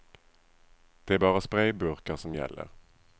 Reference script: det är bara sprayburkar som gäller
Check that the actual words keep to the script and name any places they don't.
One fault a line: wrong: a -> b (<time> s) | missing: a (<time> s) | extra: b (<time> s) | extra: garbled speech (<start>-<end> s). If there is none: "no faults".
no faults